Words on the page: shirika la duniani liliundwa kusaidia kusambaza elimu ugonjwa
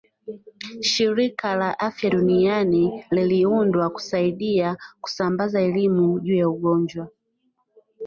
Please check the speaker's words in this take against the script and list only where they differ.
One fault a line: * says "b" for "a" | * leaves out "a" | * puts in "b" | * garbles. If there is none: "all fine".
* puts in "afya"
* puts in "juu ya"